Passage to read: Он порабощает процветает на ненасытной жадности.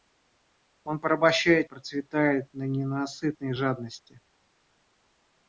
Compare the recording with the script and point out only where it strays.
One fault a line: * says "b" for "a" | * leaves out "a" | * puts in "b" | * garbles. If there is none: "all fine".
all fine